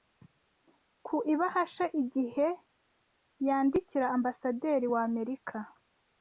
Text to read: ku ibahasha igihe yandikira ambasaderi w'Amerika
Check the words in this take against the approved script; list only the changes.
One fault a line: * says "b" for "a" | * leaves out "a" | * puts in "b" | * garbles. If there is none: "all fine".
all fine